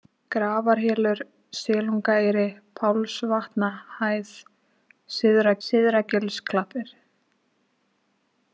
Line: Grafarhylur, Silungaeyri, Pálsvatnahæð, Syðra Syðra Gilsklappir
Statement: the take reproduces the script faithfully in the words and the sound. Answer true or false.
true